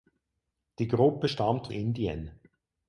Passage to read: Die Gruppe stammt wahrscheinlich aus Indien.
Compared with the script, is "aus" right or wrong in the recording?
wrong